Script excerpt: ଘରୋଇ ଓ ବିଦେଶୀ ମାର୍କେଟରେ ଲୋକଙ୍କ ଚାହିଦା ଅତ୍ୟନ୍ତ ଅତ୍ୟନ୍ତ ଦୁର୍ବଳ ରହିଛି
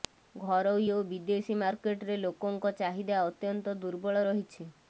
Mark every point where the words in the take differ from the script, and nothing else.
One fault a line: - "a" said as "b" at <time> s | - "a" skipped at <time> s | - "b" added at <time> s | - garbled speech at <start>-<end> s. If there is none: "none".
- "ଅତ୍ୟନ୍ତ" skipped at 3.7 s